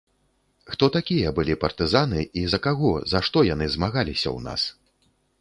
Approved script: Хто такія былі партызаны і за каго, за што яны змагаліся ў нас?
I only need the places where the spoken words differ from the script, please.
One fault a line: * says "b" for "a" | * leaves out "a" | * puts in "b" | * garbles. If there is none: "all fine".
all fine